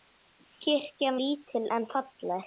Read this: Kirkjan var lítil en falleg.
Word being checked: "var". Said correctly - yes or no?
no